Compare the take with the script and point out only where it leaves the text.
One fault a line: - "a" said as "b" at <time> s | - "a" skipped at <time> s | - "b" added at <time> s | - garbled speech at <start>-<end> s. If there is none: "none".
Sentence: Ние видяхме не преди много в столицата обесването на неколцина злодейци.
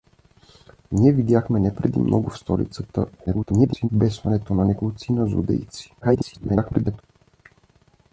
- garbled speech at 3.3-3.9 s
- garbled speech at 6.0-7.0 s